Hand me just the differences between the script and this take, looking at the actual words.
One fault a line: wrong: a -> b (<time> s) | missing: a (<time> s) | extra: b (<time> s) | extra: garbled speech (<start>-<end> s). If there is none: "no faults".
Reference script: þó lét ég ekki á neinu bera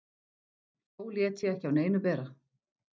no faults